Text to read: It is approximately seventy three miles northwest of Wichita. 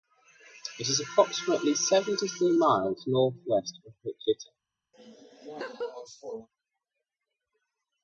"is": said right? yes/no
yes